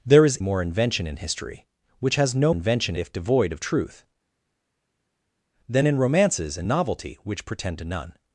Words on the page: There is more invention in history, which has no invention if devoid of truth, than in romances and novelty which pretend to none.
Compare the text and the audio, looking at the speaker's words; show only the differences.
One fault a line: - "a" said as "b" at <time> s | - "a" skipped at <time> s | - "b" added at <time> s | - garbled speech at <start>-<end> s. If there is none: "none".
none